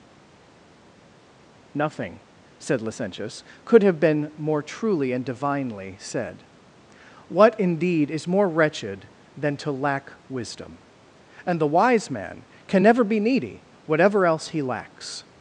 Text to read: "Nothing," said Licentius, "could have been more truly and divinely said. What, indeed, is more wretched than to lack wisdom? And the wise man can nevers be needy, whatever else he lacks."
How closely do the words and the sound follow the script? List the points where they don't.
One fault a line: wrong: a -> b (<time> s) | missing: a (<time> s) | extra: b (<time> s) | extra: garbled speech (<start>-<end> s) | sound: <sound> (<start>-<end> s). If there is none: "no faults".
wrong: nevers -> never (12.8 s)